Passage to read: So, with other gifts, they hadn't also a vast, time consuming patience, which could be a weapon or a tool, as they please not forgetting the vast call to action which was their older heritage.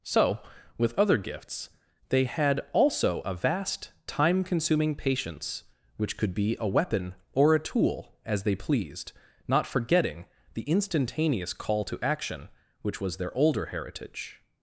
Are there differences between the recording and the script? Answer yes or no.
yes